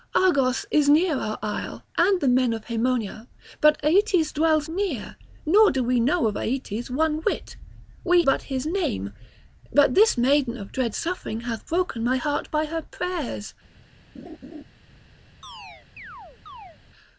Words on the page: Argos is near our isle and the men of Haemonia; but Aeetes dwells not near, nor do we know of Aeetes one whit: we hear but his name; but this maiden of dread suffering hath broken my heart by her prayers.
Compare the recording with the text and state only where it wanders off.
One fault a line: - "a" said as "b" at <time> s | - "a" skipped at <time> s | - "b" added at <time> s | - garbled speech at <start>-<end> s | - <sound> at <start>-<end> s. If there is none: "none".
- "not" skipped at 4.7 s
- "hear" skipped at 8.2 s
- laugh at 14.2-14.6 s
- chirp at 15.4-16.8 s